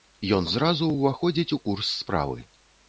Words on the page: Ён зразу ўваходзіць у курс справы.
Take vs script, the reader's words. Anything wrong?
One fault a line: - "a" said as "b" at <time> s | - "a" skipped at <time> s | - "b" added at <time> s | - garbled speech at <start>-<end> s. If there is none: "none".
none